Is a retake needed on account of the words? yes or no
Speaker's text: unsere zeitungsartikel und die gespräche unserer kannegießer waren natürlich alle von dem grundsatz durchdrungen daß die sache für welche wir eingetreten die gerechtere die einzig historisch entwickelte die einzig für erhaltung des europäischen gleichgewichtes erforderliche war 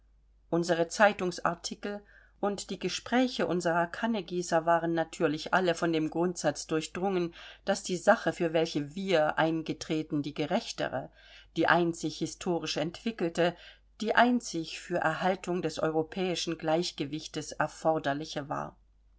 no